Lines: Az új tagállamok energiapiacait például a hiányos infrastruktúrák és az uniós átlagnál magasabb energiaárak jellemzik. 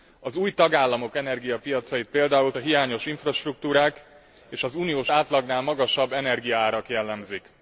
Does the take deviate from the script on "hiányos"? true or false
false